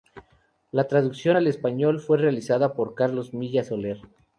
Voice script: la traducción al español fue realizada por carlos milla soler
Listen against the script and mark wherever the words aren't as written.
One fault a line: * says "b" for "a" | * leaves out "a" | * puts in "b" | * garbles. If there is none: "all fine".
all fine